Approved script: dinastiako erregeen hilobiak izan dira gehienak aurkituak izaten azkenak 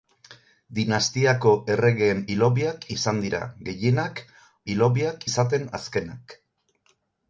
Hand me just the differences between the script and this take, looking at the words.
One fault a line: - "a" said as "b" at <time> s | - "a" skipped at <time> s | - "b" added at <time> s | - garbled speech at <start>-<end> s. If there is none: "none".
- "aurkituak" said as "hilobiak" at 4.7 s